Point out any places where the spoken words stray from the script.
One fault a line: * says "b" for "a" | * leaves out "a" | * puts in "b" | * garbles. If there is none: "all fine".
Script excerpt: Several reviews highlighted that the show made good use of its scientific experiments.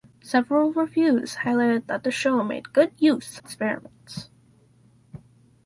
* leaves out "of its scientific"